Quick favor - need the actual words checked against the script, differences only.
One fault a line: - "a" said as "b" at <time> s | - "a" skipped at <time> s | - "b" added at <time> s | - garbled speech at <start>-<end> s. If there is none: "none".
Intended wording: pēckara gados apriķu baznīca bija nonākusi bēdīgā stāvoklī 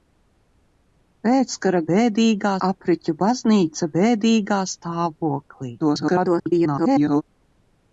- "gados" said as "bēdīgā" at 1.9 s
- "bija nonākusi" skipped at 3.9 s
- garbled speech at 5.8-7.2 s